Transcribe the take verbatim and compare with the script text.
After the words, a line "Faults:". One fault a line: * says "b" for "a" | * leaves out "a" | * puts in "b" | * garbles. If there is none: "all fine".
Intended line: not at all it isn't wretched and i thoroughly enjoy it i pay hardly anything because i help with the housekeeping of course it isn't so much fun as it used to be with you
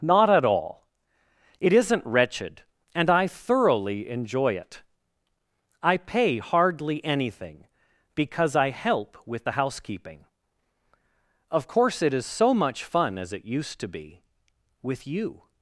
not at all it isn't wretched and i thoroughly enjoy it i pay hardly anything because i help with the housekeeping of course it is so much fun as it used to be with you
Faults:
* says "is" for "isn't"